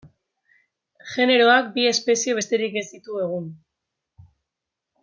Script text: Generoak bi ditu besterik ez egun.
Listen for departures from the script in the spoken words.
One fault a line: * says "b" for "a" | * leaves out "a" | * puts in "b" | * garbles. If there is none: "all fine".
* says "espezie" for "ditu"
* puts in "ditu"